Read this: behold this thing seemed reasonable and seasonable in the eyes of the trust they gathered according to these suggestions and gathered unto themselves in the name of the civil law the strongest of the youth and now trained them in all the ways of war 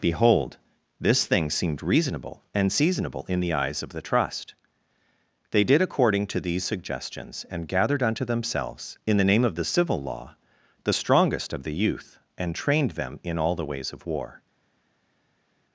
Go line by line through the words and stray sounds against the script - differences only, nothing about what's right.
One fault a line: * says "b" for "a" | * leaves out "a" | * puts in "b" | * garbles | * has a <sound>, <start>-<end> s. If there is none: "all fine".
* says "did" for "gathered"
* leaves out "now"